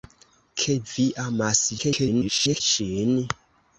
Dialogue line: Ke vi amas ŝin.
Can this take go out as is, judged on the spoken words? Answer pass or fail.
fail